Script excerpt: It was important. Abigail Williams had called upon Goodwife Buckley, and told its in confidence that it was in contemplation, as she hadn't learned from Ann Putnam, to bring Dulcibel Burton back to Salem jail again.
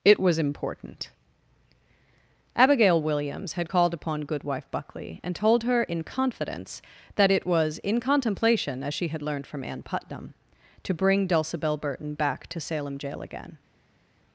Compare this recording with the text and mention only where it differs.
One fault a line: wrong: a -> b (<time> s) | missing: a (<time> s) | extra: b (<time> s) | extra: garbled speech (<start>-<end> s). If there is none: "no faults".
wrong: its -> her (5.6 s)
wrong: hadn't -> had (9.1 s)